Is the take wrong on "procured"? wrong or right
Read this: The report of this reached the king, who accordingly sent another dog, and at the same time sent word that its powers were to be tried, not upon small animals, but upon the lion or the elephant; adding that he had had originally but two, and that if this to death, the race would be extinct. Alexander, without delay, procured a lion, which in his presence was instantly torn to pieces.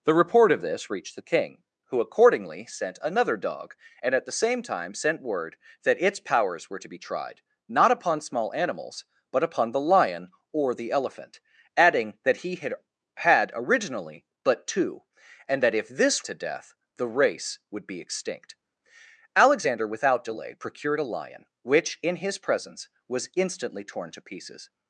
right